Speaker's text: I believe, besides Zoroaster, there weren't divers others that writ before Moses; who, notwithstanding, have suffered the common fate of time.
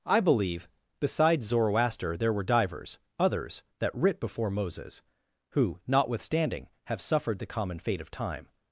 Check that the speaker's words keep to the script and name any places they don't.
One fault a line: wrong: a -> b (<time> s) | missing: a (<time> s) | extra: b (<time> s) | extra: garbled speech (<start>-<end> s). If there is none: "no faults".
wrong: weren't -> were (2.3 s)